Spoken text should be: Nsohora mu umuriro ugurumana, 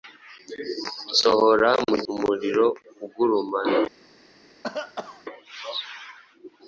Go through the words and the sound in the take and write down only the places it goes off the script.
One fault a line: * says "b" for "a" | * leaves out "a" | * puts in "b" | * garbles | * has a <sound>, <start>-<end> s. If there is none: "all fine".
* has a cough, 4.6-5.2 s